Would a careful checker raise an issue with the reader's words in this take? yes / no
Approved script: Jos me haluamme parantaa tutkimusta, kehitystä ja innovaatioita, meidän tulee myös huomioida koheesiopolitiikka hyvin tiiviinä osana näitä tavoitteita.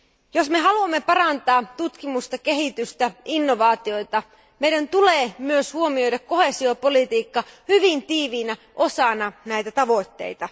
no